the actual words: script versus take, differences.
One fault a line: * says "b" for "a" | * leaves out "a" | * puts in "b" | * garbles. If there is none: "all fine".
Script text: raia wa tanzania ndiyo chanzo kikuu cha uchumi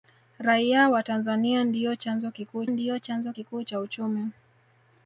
* puts in "ndiyo chanzo kikuu"